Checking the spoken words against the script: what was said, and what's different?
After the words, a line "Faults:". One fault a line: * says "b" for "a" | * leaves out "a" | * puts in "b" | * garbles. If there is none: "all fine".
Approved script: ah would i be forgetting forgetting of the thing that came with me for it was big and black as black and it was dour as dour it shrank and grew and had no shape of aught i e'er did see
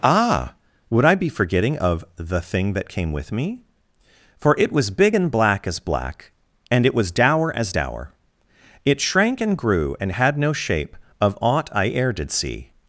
ah would i be forgetting of the thing that came with me for it was big and black as black and it was dour as dour it shrank and grew and had no shape of aught i e'er did see
Faults:
* leaves out "forgetting"